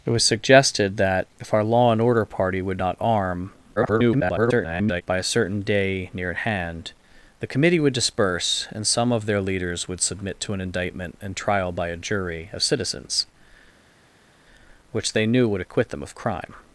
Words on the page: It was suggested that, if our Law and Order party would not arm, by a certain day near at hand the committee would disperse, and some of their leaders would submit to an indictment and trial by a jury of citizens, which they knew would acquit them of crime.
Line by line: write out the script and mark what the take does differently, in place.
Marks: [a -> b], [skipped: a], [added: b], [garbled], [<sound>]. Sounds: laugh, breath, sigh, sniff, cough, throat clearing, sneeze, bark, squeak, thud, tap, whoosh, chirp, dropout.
It was suggested that, if our Law and Order party would not arm, [garbled] by a certain day near at hand the committee would disperse, and some of their leaders would submit to an indictment and trial by a jury of citizens, which they knew would acquit them of crime.